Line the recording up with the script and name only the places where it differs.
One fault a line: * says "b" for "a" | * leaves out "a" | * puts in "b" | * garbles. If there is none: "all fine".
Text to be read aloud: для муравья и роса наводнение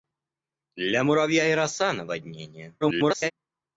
* garbles